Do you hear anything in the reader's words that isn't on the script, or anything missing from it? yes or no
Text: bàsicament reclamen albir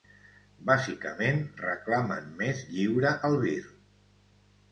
yes